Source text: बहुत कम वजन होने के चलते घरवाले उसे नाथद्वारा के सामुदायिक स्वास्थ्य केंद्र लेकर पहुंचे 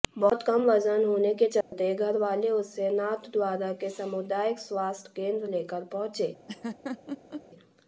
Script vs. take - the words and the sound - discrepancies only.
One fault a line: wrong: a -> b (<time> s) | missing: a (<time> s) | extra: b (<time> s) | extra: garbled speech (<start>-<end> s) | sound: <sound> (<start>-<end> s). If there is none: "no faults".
sound: dropout (1.6-1.7 s)
sound: laugh (6.5-7.4 s)